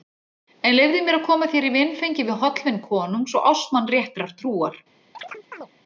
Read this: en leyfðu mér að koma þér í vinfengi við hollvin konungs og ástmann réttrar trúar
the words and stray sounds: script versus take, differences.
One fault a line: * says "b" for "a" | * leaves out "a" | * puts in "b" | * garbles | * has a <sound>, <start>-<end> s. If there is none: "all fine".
* has a chirp, 5.1-5.7 s